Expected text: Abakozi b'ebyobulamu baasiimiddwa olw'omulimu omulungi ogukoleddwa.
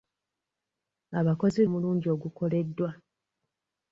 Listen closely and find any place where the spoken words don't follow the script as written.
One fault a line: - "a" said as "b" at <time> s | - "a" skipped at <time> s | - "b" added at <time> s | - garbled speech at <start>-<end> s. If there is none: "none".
- "b'ebyobulamu baasiimiddwa olw'omulimu" skipped at 1.6 s